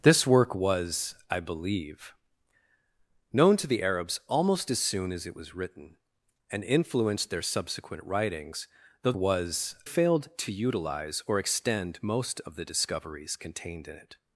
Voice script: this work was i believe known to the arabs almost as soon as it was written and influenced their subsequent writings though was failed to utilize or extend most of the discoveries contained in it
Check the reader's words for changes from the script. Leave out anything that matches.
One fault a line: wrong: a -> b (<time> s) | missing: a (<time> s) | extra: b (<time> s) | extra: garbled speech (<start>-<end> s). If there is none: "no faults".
no faults